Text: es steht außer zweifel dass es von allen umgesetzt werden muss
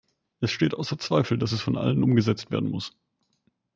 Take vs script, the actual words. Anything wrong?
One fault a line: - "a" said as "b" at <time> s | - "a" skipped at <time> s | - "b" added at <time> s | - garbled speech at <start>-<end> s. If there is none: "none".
none